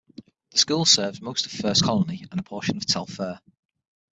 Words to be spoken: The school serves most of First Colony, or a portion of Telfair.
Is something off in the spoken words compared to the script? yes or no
yes